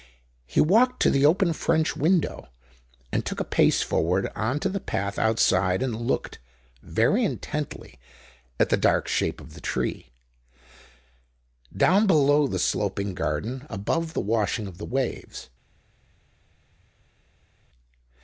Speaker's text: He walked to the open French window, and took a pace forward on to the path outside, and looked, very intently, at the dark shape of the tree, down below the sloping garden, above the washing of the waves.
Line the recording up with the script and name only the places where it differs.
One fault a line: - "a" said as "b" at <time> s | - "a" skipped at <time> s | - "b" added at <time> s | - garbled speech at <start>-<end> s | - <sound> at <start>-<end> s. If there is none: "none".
none